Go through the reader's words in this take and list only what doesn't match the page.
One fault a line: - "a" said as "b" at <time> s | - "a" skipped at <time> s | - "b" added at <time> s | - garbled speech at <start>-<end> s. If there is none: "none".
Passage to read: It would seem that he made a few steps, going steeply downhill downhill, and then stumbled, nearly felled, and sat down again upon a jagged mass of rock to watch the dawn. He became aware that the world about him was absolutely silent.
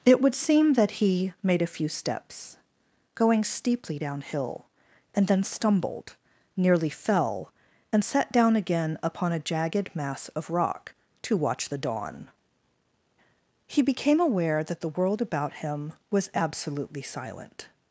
- "downhill" skipped at 4.6 s
- "felled" said as "fell" at 6.9 s